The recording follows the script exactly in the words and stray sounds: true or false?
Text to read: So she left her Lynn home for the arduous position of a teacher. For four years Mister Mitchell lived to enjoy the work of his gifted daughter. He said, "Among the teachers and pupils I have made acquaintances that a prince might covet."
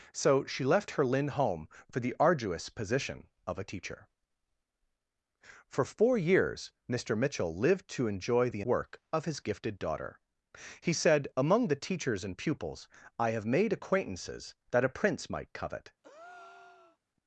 false